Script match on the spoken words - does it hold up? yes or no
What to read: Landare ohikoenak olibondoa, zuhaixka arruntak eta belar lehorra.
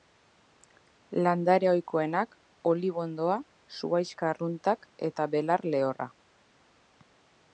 yes